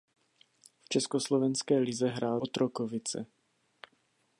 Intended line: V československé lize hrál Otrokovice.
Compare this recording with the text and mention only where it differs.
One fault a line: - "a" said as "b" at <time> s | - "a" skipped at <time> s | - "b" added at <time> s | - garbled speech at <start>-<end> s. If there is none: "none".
none